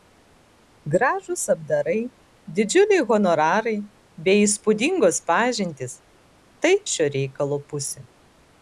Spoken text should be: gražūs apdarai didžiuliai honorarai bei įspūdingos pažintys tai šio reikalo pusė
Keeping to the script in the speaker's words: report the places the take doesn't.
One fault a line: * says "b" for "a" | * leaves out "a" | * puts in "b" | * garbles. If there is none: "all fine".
all fine